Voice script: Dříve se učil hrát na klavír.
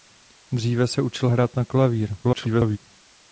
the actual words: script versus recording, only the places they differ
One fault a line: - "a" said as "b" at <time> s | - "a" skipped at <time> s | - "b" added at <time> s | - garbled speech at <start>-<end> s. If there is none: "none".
- garbled speech at 2.2-2.8 s